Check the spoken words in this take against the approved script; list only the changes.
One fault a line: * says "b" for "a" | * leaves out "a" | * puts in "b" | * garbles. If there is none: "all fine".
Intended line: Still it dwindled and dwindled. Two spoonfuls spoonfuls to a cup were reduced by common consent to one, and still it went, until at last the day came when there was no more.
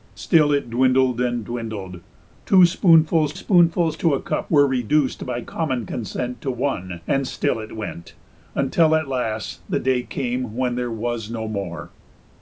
all fine